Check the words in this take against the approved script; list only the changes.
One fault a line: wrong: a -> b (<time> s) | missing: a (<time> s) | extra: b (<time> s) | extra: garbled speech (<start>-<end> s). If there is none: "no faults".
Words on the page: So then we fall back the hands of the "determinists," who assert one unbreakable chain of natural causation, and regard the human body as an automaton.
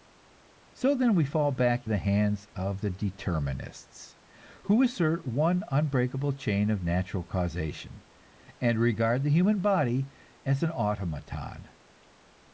no faults